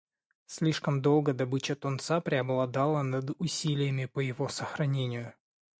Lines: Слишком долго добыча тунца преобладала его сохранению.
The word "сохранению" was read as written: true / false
true